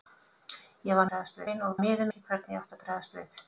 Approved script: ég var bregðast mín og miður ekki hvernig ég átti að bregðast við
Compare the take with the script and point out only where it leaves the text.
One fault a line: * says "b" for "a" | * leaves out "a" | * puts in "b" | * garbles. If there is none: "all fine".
all fine